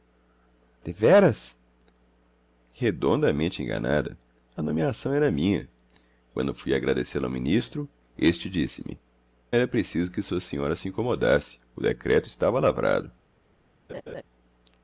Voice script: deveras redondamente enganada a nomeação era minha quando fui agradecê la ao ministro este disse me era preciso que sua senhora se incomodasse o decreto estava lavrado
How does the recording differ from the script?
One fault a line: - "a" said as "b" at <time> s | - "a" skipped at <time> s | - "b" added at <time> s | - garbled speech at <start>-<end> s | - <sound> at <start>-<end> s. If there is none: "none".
- laugh at 13.9-14.2 s